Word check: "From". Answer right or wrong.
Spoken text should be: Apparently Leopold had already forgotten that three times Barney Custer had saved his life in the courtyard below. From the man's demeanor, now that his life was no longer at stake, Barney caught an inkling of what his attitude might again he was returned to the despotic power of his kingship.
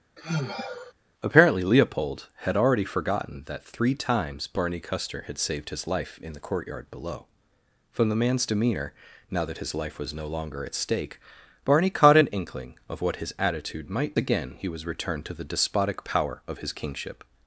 right